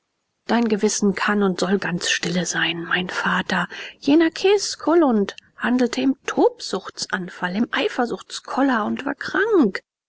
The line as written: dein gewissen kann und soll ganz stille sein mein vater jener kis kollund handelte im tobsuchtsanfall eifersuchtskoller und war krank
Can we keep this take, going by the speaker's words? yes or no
no